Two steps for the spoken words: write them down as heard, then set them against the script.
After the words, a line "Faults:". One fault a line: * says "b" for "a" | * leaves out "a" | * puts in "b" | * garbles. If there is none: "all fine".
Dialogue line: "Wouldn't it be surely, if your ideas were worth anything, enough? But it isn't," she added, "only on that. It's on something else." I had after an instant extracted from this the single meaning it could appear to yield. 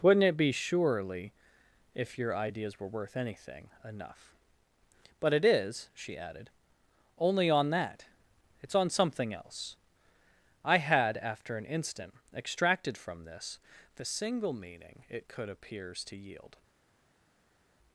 "Wouldn't it be surely, if your ideas were worth anything, enough? But it is," she added, "only on that. It's on something else." I had after an instant extracted from this the single meaning it could appears to yield.
Faults:
* says "is" for "isn't"
* says "appears" for "appear"